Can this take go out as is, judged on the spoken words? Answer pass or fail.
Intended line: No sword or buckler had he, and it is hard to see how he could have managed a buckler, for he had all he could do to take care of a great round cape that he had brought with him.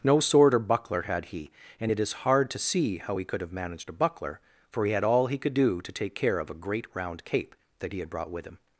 pass